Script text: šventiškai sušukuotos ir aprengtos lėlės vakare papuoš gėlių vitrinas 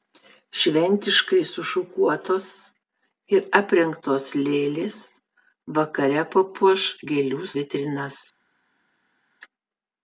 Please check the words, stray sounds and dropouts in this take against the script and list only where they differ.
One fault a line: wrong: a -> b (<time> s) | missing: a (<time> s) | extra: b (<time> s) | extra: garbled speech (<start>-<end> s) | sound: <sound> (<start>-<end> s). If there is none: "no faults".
no faults